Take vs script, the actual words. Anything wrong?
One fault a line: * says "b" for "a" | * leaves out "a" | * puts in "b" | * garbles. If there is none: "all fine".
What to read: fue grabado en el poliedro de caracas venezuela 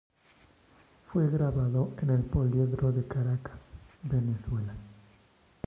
all fine